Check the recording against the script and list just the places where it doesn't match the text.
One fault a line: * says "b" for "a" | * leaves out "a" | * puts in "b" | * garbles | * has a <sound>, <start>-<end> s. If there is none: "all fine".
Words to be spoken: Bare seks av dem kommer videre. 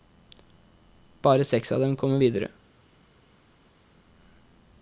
all fine